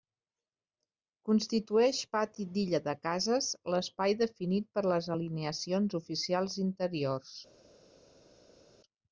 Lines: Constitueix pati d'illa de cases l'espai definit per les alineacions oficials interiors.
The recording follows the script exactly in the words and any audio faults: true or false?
true